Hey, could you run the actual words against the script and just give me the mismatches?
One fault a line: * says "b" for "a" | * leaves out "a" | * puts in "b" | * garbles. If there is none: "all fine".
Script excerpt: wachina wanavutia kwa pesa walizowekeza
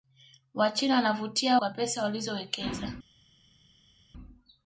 all fine